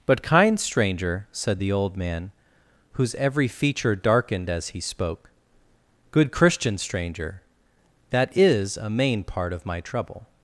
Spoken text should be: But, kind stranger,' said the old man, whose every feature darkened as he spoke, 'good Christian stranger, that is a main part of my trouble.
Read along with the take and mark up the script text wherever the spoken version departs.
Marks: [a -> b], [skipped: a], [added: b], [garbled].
But, kind stranger,' said the old man, whose every feature darkened as he spoke, 'good Christian stranger, that is a main part of my trouble.